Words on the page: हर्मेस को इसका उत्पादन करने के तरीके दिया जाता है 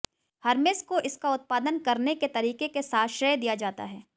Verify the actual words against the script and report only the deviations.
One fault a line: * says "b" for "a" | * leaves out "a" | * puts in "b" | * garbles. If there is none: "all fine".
* puts in "के साथ श्रेय"